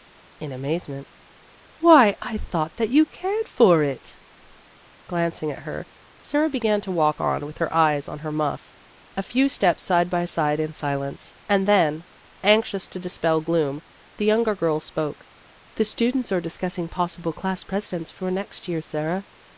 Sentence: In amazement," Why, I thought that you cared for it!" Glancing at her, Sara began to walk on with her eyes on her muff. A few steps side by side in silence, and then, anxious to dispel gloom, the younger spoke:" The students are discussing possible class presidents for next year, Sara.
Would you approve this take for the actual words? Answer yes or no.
no